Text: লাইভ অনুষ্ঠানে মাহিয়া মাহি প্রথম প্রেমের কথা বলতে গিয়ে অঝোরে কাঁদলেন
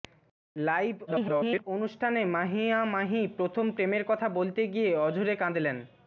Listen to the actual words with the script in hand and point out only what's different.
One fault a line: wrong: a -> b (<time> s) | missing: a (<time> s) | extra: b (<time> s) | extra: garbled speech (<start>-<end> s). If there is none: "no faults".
extra: garbled speech (1.1-1.6 s)